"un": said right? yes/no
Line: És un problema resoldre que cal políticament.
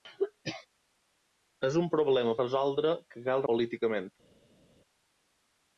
yes